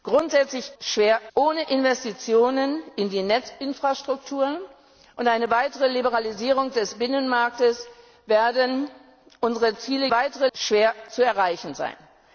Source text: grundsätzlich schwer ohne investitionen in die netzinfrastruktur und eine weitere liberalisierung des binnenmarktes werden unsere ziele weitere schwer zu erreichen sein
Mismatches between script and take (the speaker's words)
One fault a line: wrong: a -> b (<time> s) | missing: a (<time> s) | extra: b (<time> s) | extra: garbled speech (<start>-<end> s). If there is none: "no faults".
no faults